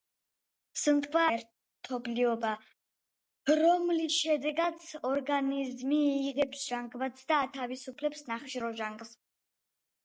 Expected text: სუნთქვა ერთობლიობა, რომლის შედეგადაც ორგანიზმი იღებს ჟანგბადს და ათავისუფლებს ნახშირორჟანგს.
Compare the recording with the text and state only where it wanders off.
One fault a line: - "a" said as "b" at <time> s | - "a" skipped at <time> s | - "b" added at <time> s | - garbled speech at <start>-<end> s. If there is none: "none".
none